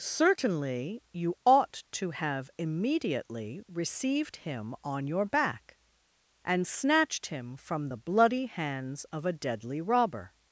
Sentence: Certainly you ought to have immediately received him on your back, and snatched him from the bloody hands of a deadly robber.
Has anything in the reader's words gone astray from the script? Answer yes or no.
no